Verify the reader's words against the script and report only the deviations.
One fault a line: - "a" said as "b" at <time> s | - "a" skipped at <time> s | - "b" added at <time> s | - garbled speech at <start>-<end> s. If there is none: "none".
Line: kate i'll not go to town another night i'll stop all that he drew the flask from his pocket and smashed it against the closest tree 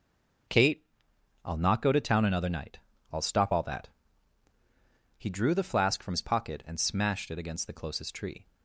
none